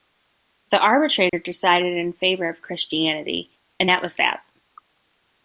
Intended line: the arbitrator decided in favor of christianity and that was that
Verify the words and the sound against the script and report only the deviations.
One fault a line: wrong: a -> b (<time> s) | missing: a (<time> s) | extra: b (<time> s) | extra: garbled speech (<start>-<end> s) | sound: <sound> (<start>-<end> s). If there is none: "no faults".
sound: dropout (1.3-1.3 s)